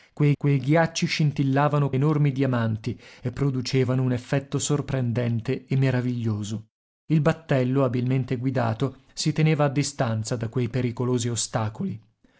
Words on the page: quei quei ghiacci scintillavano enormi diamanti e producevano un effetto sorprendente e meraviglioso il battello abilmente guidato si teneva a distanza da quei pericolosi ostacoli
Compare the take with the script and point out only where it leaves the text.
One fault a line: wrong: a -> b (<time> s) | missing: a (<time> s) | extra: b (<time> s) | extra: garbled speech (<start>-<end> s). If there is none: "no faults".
no faults